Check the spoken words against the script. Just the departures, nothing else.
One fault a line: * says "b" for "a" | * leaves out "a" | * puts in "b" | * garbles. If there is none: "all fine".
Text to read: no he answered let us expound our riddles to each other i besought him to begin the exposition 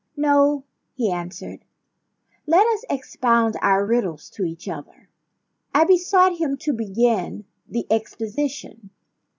all fine